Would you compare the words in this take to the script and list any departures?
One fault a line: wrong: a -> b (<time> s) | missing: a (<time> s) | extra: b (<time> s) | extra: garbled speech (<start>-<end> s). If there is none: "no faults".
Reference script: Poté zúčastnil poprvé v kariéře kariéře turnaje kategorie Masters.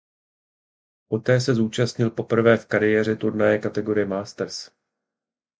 extra: se (1.4 s)
missing: kariéře (3.1 s)